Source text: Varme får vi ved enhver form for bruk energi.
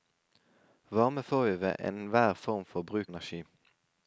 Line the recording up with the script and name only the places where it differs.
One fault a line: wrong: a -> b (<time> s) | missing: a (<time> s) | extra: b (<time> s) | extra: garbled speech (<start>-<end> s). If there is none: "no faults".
no faults